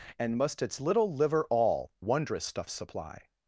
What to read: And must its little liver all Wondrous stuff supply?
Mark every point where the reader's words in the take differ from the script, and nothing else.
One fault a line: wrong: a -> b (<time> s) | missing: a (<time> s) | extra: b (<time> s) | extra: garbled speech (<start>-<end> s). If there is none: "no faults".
no faults